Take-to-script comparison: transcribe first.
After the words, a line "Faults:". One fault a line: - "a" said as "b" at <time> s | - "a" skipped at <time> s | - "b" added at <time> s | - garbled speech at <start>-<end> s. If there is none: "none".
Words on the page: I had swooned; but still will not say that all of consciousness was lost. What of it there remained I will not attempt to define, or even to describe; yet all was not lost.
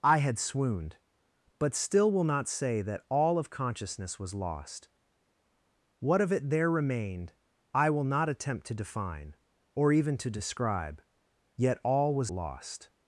I had swooned; but still will not say that all of consciousness was lost. What of it there remained I will not attempt to define, or even to describe; yet all was lost.
Faults:
- "not" skipped at 12.3 s